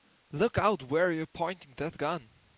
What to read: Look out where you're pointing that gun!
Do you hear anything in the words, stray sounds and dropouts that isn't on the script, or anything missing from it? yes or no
no